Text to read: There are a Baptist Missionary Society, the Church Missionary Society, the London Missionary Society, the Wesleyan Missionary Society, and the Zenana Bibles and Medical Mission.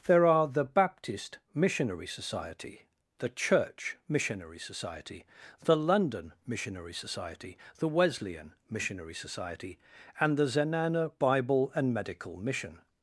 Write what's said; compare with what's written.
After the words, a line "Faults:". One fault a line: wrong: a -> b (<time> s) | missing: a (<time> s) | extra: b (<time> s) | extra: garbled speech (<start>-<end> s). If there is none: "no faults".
There are the Baptist Missionary Society, the Church Missionary Society, the London Missionary Society, the Wesleyan Missionary Society, and the Zenana Bible and Medical Mission.
Faults:
wrong: a -> the (0.5 s)
wrong: Bibles -> Bible (11.2 s)